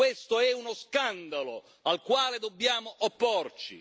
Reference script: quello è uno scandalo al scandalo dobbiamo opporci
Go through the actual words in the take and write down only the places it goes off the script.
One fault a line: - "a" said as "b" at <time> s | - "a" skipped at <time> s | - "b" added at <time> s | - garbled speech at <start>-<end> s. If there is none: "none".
- "quello" said as "questo" at 0.0 s
- "scandalo" said as "quale" at 2.0 s